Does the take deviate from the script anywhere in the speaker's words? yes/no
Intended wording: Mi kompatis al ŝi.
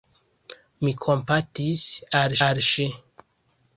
yes